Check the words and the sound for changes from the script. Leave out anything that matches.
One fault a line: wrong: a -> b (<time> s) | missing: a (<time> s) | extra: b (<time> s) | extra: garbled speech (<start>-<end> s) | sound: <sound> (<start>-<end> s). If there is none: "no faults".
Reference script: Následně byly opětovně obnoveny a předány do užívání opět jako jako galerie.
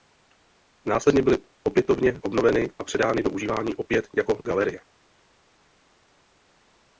missing: jako (4.4 s)